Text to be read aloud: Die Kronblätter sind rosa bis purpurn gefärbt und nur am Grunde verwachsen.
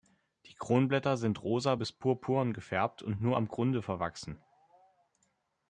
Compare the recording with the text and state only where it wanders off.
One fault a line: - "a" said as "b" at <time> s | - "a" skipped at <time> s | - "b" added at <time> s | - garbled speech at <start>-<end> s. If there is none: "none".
none